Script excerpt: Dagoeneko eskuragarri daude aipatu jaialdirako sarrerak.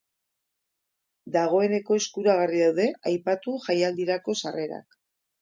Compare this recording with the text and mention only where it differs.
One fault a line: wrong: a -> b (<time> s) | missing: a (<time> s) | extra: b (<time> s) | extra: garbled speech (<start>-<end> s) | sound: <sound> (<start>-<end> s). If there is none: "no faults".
no faults